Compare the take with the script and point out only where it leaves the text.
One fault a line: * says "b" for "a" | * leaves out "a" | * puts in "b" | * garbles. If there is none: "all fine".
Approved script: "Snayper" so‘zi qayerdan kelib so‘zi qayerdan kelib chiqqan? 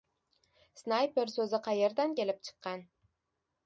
* leaves out "so‘zi qayerdan kelib"